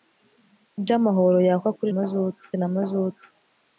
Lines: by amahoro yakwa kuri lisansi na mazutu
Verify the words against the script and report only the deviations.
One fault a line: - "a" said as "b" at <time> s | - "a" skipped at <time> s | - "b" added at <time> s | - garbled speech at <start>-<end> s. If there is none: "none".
- "lisansi" said as "mazutu" at 1.9 s